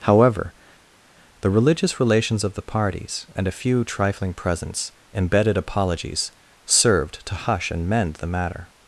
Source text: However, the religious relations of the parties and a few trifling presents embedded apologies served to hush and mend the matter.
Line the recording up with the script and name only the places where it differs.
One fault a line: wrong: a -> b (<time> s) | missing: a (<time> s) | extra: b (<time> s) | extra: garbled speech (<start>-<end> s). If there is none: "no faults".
no faults